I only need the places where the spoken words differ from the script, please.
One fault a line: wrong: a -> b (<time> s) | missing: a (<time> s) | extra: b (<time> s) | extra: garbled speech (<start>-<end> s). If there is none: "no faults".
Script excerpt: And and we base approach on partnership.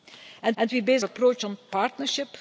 no faults